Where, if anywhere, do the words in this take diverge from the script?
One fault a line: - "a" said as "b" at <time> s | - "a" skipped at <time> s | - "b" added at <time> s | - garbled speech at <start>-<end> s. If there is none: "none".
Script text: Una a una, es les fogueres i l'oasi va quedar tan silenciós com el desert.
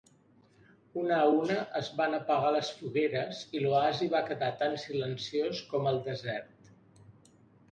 - "van apagar" added at 2.0 s